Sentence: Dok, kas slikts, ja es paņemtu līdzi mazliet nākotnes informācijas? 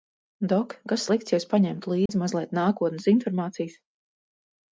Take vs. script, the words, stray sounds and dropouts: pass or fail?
fail